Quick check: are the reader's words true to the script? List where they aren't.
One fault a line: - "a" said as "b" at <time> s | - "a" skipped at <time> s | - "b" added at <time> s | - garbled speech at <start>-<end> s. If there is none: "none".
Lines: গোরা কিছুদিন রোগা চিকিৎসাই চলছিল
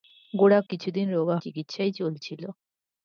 none